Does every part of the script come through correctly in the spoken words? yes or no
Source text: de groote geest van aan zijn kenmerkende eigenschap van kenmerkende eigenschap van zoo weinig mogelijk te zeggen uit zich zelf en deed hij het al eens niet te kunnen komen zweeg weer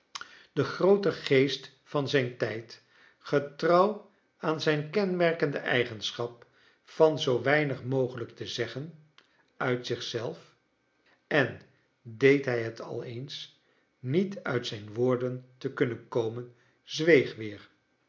no